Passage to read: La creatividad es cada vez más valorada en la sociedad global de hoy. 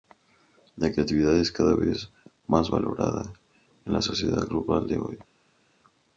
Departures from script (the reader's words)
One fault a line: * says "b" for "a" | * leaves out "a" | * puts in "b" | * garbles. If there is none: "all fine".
all fine